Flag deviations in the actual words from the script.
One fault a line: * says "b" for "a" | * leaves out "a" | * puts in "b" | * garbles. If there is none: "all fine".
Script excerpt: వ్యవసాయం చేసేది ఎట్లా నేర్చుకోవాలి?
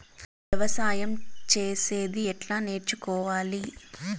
all fine